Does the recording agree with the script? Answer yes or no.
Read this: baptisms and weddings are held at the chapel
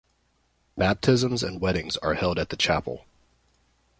yes